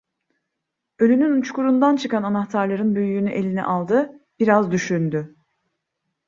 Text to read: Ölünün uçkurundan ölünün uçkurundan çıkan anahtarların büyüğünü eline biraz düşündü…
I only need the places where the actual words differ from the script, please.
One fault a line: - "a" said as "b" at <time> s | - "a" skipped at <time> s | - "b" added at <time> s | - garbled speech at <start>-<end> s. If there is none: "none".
- "ölünün uçkurundan" skipped at 1.9 s
- "aldı" added at 3.6 s